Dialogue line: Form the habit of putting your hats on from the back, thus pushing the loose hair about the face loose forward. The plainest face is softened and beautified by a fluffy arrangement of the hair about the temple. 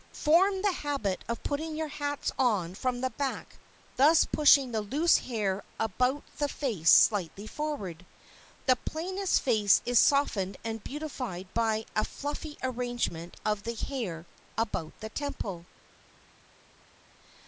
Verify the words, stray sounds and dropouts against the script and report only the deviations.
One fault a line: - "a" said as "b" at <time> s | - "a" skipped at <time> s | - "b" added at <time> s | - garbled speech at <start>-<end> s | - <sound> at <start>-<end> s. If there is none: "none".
- "loose" said as "slightly" at 6.9 s